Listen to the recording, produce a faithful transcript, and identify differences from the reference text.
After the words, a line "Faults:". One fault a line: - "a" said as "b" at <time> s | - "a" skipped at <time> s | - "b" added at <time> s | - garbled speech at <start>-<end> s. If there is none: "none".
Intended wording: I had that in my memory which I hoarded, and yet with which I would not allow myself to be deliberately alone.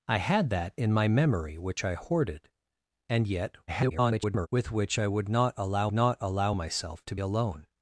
I had that in my memory which I hoarded, and yet [garbled] with which I would not allow not allow myself to alone.
Faults:
- garbled speech at 3.7-4.5 s
- "not allow" added at 5.9 s
- "be deliberately" skipped at 7.2 s